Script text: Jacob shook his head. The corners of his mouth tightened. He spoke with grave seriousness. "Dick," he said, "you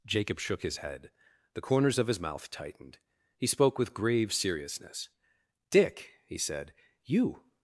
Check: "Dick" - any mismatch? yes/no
no